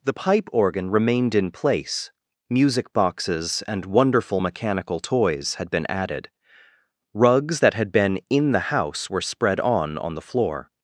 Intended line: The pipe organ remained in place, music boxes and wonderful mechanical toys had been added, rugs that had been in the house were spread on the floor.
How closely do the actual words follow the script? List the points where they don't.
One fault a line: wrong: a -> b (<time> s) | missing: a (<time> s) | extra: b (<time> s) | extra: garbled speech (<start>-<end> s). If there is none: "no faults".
extra: on (10.0 s)